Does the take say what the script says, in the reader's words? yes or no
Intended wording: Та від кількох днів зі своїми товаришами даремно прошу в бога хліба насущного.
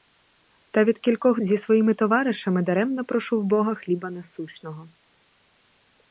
no